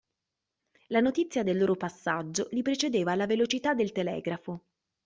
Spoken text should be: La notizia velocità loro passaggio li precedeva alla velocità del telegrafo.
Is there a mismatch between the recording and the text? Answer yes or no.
yes